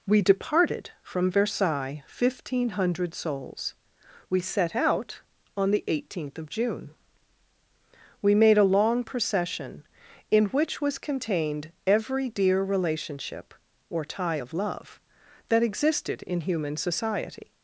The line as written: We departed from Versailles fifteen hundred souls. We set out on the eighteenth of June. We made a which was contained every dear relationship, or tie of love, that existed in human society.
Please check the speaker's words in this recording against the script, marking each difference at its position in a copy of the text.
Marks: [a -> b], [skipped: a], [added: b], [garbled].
We departed from Versailles fifteen hundred souls. We set out on the eighteenth of June. We made a [added: long procession in] which was contained every dear relationship, or tie of love, that existed in human society.